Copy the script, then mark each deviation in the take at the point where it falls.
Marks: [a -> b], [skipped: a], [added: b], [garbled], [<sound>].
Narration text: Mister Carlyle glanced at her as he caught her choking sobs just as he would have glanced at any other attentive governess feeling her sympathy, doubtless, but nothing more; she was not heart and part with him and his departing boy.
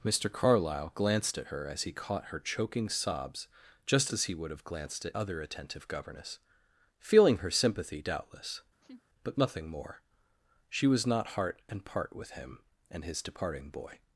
Mister Carlyle glanced at her as he caught her choking sobs just as he would have glanced at [skipped: any] other attentive governess feeling her sympathy, doubtless, [laugh] but nothing more; she was not heart and part with him and his departing boy.